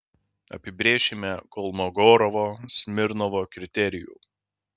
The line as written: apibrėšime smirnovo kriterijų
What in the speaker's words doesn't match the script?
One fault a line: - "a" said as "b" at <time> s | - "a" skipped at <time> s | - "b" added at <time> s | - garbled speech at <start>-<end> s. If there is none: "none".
- "kolmogorovo" added at 1.6 s